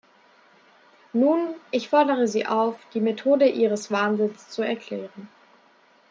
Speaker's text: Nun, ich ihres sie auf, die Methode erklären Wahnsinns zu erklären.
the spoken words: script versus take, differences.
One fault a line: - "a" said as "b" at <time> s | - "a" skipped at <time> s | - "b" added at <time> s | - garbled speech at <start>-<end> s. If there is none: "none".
- "ihres" said as "fordere" at 1.9 s
- "erklären" said as "ihres" at 3.5 s